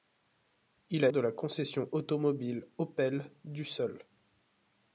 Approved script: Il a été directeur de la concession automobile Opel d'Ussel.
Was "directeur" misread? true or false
true